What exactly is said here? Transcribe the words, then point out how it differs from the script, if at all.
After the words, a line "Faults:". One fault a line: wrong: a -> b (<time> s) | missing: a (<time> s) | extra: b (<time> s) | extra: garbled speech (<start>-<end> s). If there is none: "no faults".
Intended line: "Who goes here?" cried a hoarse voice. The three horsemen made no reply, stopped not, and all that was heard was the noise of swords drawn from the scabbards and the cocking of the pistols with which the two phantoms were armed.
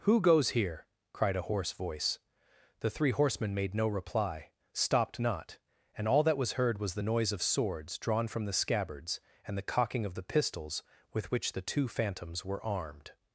"Who goes here?" cried a hoarse voice. The three horsemen made no reply, stopped not, and all that was heard was the noise of swords drawn from the scabbards and the cocking of the pistols with which the two phantoms were armed.
Faults:
no faults